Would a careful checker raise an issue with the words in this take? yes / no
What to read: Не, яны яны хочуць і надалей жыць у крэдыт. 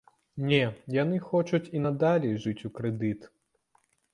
yes